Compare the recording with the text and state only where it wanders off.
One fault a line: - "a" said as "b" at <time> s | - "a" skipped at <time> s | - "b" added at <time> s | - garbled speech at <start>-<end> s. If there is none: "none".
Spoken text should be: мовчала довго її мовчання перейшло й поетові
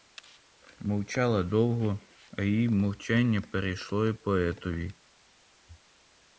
- "а" added at 2.3 s